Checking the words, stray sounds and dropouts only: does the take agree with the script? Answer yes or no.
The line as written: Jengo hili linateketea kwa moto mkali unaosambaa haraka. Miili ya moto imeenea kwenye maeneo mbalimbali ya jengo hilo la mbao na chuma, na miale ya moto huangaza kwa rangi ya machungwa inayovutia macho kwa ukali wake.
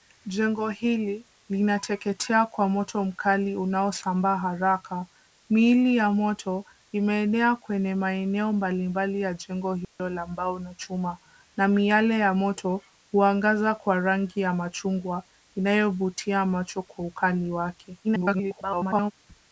no